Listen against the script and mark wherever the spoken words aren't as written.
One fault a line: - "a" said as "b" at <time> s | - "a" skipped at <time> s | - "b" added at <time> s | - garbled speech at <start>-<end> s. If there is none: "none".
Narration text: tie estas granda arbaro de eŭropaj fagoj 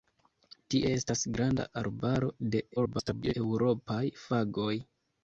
- garbled speech at 2.8-3.3 s